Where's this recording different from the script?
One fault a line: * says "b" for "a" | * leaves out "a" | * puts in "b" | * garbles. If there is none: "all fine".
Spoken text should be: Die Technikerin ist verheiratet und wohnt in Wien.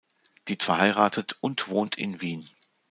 * leaves out "Technikerin ist"